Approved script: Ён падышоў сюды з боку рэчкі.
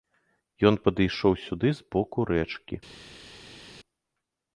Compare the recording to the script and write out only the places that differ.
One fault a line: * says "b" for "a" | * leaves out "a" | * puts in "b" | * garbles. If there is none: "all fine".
all fine